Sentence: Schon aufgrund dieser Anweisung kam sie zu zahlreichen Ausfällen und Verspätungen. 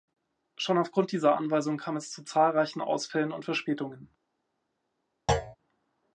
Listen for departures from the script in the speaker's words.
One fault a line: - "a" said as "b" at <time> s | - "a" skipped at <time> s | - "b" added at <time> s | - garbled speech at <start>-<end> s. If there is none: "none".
- "sie" said as "es" at 1.9 s